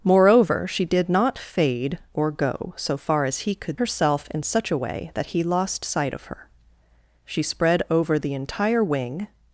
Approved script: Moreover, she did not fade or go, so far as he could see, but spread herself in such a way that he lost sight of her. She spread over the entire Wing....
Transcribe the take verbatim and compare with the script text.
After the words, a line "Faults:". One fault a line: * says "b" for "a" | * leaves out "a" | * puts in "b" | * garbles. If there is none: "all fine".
Moreover, she did not fade or go, so far as he could herself in such a way that he lost sight of her. She spread over the entire Wing....
Faults:
* leaves out "see but spread"